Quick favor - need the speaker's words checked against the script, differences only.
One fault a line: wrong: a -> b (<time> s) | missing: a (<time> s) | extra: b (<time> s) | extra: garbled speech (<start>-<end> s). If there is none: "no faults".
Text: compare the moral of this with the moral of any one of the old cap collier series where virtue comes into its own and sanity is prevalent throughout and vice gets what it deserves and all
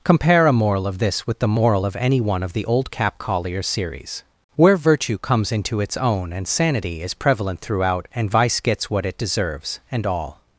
wrong: the -> a (0.5 s)